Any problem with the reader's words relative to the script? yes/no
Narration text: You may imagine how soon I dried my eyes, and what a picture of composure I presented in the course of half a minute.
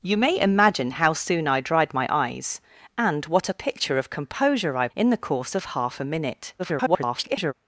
yes